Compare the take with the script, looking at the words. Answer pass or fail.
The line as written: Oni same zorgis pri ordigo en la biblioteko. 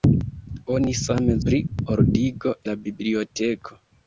fail